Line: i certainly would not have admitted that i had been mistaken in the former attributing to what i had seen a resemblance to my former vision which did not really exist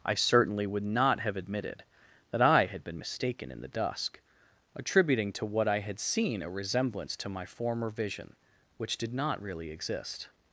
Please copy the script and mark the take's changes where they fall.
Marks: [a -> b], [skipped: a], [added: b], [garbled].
i certainly would not have admitted that i had been mistaken in the [former -> dusk] attributing to what i had seen a resemblance to my former vision which did not really exist